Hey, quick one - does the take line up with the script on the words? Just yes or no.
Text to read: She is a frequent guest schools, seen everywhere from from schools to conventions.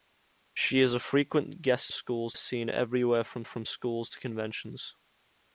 yes